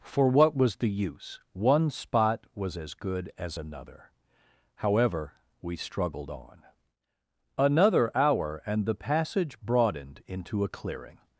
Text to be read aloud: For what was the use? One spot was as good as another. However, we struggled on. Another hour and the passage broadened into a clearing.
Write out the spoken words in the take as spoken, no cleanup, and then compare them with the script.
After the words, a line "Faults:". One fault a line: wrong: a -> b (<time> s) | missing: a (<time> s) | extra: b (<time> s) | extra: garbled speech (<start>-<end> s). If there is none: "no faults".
For what was the use? One spot was as good as another. However, we struggled on. Another hour and the passage broadened into a clearing.
Faults:
no faults